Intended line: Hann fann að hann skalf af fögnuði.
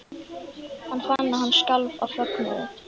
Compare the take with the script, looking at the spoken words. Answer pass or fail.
pass